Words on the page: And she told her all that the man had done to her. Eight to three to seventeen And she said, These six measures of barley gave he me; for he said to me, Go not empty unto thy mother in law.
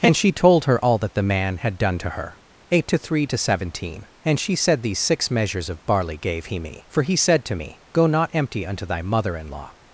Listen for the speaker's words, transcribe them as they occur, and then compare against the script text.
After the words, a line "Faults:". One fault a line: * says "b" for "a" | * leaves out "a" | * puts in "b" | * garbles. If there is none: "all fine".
And she told her all that the man had done to her. Eight to three to seventeen And she said, These six measures of barley gave he me; for he said to me, Go not empty unto thy mother in law.
Faults:
all fine